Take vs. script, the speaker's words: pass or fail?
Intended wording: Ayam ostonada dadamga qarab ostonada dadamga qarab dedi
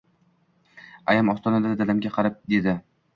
fail